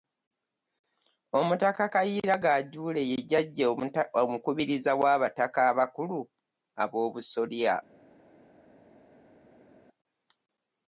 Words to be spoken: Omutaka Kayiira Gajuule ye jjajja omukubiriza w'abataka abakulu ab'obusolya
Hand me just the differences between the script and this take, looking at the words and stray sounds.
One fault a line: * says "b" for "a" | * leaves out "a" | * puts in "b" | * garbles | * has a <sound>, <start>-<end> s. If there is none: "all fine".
all fine